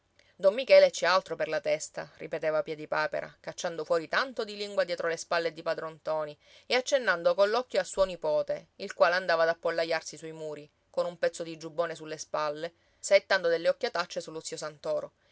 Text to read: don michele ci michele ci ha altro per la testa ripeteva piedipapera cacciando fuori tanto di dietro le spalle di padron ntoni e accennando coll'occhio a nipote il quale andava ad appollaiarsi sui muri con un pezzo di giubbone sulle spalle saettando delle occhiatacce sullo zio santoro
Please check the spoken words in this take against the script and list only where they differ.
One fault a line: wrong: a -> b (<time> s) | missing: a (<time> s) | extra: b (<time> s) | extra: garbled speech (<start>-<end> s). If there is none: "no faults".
missing: michele ci (1.1 s)
extra: lingua (4.6 s)
extra: suo (7.8 s)